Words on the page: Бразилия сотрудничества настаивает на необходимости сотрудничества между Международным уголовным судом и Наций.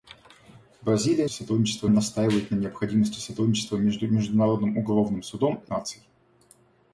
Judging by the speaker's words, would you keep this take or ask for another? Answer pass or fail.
pass